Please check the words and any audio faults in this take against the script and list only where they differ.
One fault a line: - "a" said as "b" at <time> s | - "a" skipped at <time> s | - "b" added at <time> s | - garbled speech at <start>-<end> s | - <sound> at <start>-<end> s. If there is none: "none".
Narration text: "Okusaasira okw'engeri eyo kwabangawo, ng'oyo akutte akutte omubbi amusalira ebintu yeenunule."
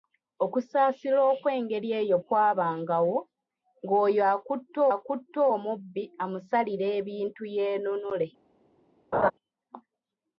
- laugh at 9.1-9.3 s